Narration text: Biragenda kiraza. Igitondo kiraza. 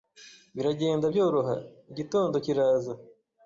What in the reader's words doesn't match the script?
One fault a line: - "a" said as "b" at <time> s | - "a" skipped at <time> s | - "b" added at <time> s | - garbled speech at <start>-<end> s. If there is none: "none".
- "kiraza" said as "byoroha" at 1.1 s